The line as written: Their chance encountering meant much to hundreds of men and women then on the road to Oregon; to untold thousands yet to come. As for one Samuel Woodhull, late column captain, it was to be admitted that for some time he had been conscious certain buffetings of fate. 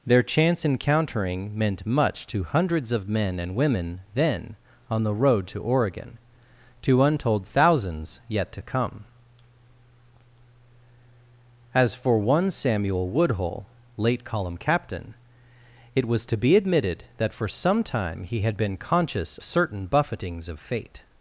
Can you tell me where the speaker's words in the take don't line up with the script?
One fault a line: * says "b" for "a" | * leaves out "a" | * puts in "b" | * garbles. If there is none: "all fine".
all fine